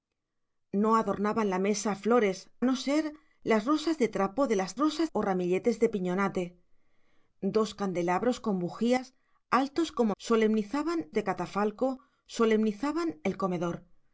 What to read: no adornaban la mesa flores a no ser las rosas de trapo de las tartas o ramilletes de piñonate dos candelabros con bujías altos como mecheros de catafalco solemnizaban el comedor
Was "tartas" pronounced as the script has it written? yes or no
no